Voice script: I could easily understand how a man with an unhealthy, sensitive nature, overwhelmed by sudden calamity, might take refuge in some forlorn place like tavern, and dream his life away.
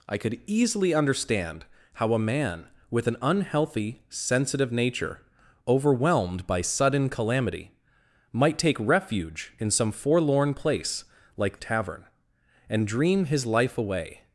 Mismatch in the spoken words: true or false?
false